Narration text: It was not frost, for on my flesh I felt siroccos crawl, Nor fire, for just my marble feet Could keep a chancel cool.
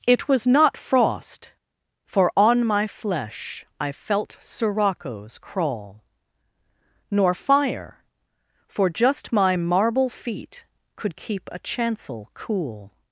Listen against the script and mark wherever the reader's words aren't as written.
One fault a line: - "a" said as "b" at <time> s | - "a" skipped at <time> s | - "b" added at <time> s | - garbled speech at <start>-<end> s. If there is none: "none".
none